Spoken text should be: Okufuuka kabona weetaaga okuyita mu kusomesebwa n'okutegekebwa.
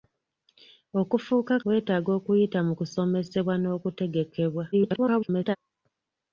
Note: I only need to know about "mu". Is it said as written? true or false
true